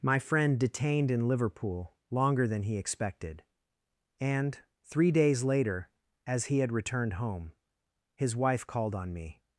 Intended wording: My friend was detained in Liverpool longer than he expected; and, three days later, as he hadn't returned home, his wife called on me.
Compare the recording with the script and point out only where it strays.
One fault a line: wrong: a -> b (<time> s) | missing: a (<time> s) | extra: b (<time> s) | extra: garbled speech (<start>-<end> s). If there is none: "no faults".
missing: was (0.6 s)
wrong: hadn't -> had (6.6 s)